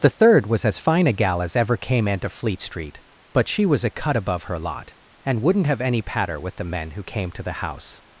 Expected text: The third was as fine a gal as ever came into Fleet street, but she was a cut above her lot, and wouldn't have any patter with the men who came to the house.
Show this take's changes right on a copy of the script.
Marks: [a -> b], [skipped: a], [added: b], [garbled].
The third was as fine a gal as ever came into Fleet street, but she was a cut above her lot, and wouldn't have any patter with the men who came to the house.